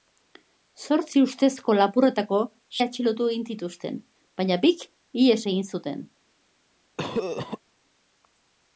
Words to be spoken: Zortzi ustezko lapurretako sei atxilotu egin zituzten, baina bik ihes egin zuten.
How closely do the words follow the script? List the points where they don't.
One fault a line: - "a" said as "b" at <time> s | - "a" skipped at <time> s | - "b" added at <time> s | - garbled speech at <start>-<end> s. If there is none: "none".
- "sei" skipped at 2.4 s